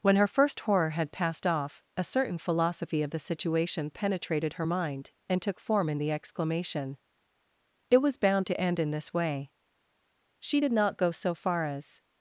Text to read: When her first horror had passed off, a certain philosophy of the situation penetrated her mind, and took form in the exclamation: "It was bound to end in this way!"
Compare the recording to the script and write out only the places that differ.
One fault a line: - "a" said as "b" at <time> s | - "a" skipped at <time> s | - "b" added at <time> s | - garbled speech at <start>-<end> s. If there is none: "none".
- "She did not go so far as" added at 10.4 s